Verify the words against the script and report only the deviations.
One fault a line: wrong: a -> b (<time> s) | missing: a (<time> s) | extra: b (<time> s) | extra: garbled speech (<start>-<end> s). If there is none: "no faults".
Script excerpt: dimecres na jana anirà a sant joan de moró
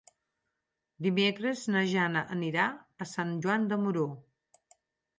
no faults